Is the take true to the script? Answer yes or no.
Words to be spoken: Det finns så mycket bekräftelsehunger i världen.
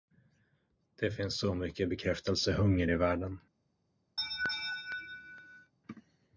yes